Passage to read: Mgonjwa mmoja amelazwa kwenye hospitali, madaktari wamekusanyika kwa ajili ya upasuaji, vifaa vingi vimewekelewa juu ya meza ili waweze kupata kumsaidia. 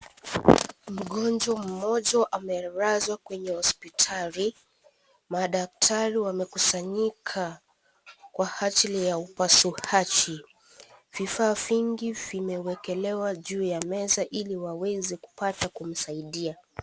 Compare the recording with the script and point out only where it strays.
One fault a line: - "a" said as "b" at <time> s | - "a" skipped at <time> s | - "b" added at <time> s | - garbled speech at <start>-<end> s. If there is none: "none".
none